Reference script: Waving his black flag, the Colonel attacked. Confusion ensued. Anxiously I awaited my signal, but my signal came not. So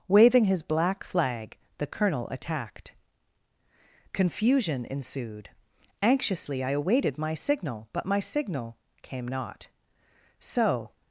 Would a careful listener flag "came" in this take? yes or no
no